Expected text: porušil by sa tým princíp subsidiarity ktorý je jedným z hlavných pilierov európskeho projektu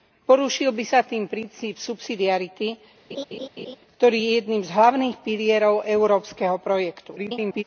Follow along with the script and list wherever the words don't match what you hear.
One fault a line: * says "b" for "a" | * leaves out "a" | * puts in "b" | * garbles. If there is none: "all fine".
* garbles